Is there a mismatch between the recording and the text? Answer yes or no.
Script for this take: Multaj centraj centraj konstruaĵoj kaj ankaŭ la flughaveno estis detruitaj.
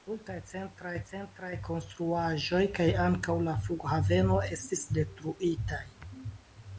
no